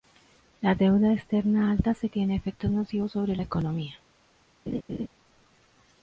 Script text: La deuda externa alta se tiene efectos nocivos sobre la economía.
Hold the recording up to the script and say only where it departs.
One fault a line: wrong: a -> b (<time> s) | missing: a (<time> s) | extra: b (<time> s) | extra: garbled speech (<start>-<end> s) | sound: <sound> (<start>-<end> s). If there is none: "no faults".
sound: laugh (4.7-5.1 s)